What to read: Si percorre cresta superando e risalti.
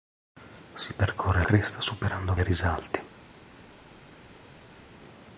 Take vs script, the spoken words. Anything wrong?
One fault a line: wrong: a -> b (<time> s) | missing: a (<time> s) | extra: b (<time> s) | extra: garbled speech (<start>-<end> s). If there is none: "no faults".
no faults